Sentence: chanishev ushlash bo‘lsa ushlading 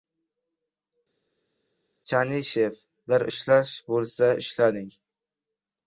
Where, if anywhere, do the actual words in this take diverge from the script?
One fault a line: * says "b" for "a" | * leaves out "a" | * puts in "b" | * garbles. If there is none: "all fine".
* puts in "bir"